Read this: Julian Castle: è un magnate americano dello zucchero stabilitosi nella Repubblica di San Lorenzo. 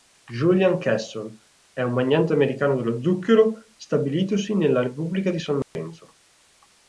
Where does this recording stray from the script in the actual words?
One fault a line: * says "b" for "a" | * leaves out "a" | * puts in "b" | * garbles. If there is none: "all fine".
all fine